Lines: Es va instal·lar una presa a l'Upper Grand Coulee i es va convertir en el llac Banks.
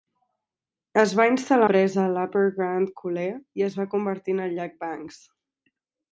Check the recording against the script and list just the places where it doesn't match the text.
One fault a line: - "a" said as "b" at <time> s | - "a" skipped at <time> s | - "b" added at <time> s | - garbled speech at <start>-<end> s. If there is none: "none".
- "una" skipped at 1.7 s